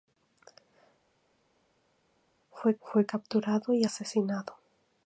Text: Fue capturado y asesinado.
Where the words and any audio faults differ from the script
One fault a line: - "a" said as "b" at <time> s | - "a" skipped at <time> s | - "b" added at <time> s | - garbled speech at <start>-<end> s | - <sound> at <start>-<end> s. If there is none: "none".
- "fue" added at 2.8 s